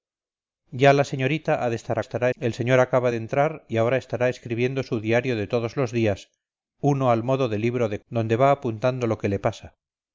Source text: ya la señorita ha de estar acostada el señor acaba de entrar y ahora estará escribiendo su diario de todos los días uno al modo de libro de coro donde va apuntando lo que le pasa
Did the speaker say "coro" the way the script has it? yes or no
no